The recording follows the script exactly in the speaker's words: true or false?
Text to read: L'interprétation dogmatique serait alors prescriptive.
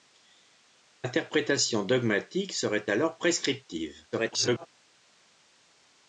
false